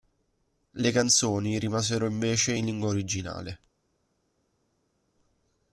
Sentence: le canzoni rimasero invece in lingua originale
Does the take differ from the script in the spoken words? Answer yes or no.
no